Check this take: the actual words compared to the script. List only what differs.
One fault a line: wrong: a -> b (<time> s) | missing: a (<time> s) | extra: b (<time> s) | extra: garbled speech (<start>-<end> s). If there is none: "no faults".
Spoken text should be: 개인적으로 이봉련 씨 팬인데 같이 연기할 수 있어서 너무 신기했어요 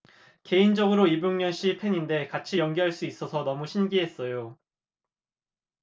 no faults